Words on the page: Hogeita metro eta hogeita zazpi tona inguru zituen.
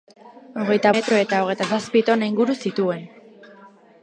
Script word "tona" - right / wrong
right